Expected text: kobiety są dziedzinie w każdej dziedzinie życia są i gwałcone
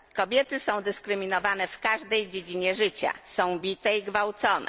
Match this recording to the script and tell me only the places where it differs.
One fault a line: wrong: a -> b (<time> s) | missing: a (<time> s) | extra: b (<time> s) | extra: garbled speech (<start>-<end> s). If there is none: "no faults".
wrong: dziedzinie -> dyskryminowane (0.8 s)
extra: bite (3.6 s)